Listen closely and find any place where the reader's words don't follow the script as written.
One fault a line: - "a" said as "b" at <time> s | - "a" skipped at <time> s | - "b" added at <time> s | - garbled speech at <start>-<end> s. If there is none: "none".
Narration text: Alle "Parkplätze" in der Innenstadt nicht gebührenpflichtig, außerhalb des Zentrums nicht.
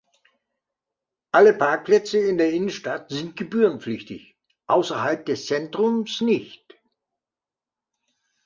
- "nicht" said as "sind" at 3.1 s